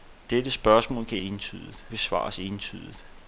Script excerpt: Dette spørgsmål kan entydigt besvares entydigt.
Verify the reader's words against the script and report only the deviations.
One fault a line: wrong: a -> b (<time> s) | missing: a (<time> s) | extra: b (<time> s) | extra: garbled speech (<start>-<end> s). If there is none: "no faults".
no faults